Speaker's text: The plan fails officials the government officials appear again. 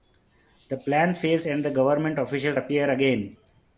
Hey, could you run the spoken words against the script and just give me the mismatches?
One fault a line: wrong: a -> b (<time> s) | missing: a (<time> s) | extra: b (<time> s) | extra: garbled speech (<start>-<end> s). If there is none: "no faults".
wrong: officials -> and (1.5 s)